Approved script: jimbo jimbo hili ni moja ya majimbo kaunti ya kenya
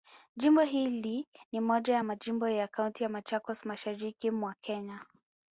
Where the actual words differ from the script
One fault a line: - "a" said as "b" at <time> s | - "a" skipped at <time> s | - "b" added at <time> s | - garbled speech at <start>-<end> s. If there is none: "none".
- "jimbo" skipped at 0.6 s
- "ya" added at 2.5 s
- "machakos mashariki mwa" added at 3.1 s